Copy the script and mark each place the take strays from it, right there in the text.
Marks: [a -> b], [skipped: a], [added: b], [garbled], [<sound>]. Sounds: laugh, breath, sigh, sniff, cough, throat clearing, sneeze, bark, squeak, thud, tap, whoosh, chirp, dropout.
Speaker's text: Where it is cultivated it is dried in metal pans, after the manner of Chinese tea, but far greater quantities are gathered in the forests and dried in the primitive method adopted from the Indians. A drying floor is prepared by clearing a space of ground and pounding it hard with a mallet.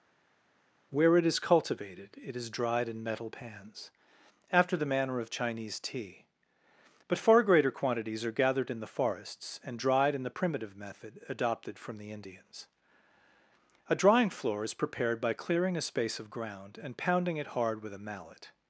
Where it is cultivated it is dried in metal pans, after the manner of Chinese tea, but far greater quantities are gathered in the forests and dried in the primitive method adopted from the Indians. A drying floor is prepared by clearing a space of ground and pounding it hard with a mallet.